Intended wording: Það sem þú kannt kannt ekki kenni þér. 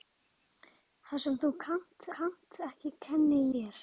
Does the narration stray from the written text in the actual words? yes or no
no